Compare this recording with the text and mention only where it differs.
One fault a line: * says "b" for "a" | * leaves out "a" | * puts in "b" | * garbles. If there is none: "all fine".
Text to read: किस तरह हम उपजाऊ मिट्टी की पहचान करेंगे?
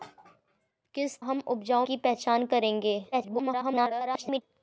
* leaves out "तरह"
* leaves out "मिट्टी"
* garbles